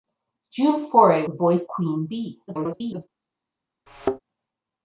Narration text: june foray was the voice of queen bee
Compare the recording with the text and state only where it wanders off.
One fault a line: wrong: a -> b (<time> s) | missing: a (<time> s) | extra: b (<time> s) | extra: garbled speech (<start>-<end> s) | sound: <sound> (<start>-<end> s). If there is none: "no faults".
missing: was (1.3 s)
missing: of (1.7 s)
extra: garbled speech (2.5-3.1 s)
sound: thud (3.9-4.2 s)